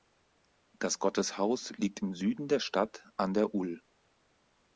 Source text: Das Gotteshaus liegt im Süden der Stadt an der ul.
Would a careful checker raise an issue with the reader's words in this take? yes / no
no